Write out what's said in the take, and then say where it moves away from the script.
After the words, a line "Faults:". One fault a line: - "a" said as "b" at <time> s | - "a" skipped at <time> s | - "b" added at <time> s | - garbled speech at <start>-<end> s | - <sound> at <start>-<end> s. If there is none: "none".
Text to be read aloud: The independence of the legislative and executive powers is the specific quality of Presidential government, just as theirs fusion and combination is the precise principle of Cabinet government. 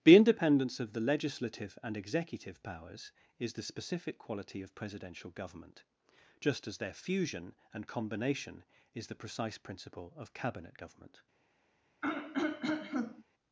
The independence of the legislative and executive powers is the specific quality of Presidential government, just as their fusion and combination is the precise principle of Cabinet government.
Faults:
- "theirs" said as "their" at 6.8 s
- throat clearing at 12.0-13.2 s